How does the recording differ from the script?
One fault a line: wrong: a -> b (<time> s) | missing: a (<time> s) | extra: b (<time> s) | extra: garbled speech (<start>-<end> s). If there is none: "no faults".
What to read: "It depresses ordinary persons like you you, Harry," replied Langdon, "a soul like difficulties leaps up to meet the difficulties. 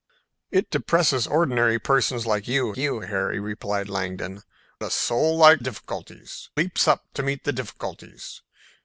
no faults